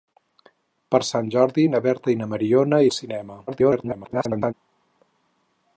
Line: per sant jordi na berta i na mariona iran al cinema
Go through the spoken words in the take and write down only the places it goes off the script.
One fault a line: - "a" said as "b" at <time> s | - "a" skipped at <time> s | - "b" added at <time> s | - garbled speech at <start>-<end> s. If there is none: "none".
- "iran" skipped at 2.8 s
- garbled speech at 3.5-4.5 s